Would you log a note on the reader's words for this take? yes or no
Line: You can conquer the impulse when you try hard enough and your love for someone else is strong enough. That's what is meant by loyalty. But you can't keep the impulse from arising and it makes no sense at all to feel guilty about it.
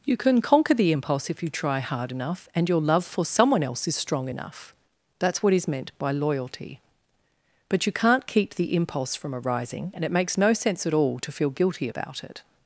yes